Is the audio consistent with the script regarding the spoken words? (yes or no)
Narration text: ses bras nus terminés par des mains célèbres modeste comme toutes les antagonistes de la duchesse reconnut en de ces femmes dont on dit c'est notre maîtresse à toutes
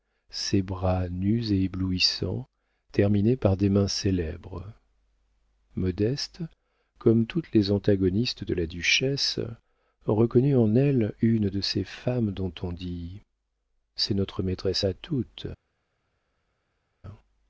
no